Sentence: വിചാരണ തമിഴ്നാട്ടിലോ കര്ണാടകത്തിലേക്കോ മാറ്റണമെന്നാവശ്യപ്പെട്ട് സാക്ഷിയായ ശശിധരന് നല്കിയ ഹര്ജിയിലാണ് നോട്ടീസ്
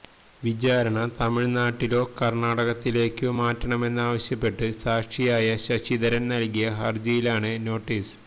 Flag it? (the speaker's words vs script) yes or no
no